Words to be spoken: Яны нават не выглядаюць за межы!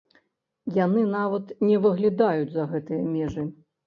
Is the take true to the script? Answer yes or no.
no